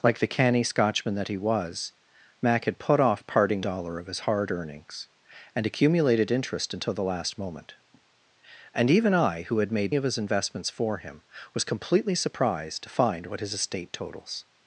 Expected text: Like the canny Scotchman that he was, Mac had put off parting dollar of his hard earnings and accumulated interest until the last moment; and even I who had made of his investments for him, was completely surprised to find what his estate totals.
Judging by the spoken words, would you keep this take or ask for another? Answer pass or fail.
pass